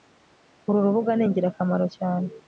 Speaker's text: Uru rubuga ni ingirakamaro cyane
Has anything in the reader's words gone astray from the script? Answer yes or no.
no